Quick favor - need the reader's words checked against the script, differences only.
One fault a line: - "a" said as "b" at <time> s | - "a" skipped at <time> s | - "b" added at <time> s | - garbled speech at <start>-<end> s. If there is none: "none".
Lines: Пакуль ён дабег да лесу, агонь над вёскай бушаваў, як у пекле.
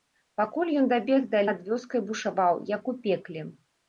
- "лесу агонь" skipped at 1.4 s